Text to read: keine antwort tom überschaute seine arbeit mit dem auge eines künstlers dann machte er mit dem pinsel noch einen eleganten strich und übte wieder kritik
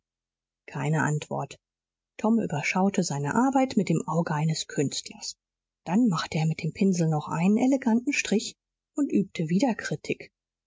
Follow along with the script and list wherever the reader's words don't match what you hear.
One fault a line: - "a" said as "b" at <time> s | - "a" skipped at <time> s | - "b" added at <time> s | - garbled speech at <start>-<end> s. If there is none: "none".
none